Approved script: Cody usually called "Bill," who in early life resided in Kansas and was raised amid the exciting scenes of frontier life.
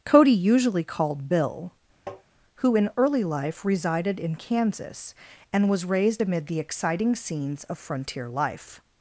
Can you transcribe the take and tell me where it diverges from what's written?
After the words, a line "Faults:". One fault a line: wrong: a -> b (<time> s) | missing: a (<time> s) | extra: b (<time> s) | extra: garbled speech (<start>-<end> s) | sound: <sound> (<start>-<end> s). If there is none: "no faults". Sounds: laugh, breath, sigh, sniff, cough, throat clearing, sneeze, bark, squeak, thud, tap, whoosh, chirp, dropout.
Cody usually called "Bill," who in early life resided in Kansas and was raised amid the exciting scenes of frontier life.
Faults:
sound: tap (2.1-2.2 s)